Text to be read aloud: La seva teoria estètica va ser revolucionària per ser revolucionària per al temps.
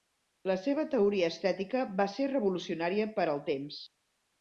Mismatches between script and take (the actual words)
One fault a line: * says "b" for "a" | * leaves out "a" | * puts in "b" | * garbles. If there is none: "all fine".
* leaves out "ser revolucionària per"